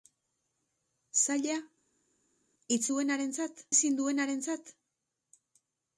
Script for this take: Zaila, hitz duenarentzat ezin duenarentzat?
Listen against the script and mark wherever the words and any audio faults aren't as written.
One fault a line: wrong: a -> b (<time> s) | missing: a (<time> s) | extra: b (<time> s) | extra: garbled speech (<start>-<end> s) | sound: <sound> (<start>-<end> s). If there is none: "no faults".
no faults